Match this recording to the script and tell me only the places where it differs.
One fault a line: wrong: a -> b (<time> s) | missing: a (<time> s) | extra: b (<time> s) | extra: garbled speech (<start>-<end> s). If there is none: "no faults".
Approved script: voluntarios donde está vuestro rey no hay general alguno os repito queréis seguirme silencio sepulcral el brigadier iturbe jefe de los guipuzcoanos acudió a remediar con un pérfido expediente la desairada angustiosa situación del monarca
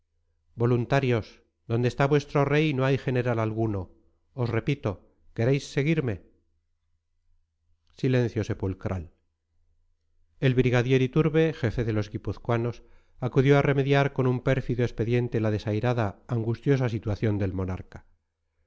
no faults